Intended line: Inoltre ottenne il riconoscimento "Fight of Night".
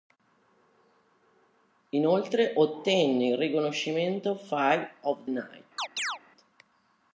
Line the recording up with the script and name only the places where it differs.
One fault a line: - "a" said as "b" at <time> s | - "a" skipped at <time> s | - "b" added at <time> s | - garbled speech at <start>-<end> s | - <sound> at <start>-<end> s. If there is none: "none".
- chirp at 5.8-6.2 s